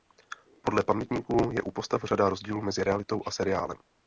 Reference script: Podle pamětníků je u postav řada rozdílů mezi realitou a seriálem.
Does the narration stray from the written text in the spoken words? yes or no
no